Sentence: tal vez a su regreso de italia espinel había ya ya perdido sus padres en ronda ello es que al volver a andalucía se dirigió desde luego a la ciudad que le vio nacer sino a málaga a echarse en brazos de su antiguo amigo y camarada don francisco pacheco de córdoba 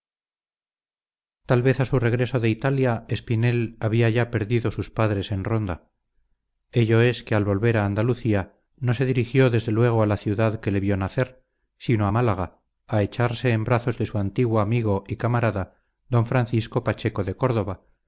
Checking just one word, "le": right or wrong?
right